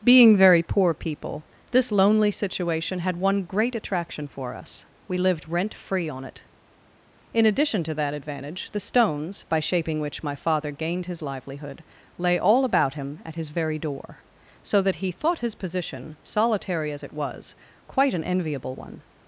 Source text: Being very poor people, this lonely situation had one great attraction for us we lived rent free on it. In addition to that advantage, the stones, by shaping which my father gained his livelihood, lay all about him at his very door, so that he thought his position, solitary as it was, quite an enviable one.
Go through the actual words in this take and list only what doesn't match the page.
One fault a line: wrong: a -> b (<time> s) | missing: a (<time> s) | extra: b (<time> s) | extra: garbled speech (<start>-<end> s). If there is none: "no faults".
no faults